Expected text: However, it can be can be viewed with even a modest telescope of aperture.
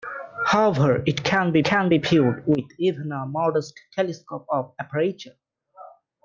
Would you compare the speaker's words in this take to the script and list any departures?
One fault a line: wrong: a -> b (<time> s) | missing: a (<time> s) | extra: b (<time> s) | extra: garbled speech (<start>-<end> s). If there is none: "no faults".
no faults